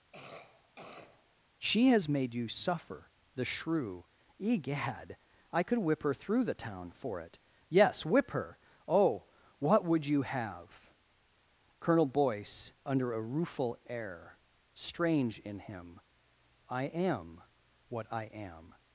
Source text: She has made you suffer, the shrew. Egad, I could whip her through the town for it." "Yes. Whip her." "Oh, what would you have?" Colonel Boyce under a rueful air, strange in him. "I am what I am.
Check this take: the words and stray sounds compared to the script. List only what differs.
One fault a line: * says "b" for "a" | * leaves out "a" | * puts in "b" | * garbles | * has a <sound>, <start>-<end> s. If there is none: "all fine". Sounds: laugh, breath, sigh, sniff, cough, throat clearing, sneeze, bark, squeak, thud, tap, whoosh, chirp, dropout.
* has a cough, 0.1-1.3 s